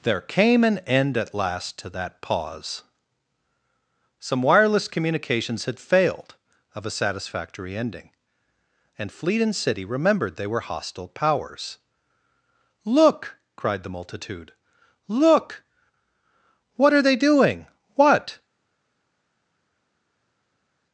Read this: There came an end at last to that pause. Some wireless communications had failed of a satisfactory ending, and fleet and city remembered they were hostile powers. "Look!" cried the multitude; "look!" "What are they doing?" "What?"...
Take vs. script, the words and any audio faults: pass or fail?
pass